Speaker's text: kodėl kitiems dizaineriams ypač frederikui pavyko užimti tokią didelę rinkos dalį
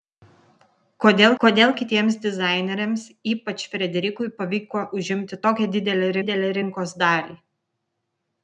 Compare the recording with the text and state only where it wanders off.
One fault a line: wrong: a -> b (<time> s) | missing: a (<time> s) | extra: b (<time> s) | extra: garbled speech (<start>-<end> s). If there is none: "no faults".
extra: kodėl (1.4 s)
extra: didelę (6.2 s)